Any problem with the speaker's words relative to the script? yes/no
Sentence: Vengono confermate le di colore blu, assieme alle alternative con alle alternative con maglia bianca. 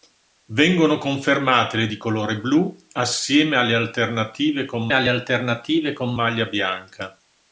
no